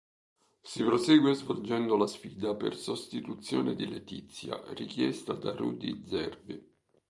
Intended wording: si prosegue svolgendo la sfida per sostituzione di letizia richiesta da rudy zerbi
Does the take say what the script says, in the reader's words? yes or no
yes